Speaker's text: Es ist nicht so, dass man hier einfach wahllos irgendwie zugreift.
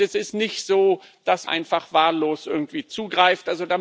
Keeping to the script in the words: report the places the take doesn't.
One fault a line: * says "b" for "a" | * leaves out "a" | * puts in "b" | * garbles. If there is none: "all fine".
* leaves out "man hier"